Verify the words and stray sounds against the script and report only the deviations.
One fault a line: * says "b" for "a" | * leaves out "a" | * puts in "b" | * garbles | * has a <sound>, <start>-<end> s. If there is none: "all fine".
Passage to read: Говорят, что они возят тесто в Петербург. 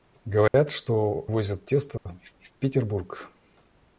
* has a dropout, 0.5-0.5 s
* leaves out "они"
* has a dropout, 2.0-2.1 s
* puts in "в"